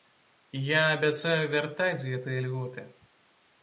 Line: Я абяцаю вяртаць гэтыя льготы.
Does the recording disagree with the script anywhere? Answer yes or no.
no